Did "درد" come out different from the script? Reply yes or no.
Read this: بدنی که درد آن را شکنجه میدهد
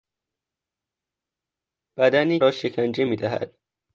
yes